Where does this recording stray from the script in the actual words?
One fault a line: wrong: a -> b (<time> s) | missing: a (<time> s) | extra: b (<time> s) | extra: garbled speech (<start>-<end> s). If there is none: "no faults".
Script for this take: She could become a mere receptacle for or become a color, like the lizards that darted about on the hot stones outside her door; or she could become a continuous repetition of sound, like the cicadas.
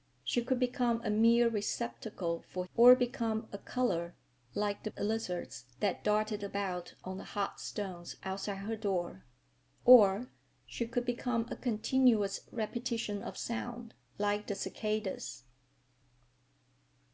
no faults